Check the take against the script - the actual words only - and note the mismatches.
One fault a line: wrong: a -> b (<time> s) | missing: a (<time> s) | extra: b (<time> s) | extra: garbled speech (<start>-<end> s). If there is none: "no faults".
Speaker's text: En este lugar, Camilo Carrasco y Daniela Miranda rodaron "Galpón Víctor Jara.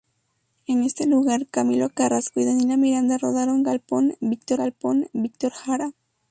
extra: galpón Víctor (4.5 s)